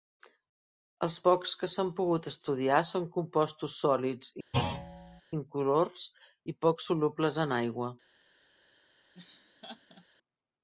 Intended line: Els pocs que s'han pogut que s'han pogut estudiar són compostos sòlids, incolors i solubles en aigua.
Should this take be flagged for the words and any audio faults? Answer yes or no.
yes